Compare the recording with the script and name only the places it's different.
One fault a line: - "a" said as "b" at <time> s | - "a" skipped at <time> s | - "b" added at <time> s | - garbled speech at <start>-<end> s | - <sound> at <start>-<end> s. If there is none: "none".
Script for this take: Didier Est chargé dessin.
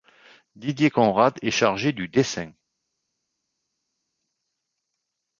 - "Conrad" added at 0.9 s
- "du" added at 1.9 s